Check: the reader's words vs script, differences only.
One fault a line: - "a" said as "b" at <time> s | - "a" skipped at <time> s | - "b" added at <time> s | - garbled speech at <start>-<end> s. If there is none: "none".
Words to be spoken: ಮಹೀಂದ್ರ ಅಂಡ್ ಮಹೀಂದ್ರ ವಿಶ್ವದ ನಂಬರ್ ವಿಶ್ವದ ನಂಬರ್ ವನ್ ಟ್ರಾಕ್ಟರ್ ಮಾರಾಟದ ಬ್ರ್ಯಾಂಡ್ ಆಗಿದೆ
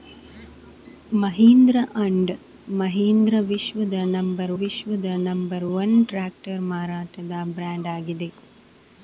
none